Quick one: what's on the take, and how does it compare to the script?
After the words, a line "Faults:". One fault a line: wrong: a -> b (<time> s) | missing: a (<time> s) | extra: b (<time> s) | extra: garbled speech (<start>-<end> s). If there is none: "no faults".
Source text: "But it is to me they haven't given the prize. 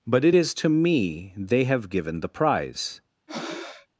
"But it is to me they have given the prize.
Faults:
wrong: haven't -> have (1.6 s)